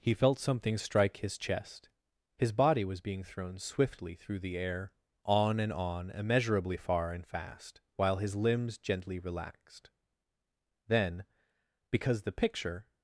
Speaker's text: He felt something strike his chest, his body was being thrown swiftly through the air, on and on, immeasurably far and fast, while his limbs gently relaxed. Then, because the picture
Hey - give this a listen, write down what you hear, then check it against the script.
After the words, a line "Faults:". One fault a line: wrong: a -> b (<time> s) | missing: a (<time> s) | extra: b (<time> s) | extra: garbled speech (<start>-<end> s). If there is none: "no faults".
He felt something strike his chest, his body was being thrown swiftly through the air, on and on, immeasurably far and fast, while his limbs gently relaxed. Then, because the picture
Faults:
no faults